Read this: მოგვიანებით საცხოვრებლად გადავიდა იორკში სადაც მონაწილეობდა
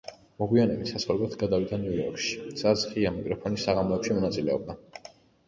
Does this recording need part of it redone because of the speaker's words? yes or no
yes